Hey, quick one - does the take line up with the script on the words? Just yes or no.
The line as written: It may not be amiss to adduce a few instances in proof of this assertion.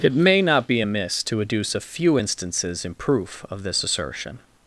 yes